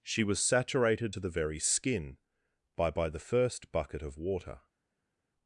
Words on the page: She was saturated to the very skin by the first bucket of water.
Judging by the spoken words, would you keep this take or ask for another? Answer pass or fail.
fail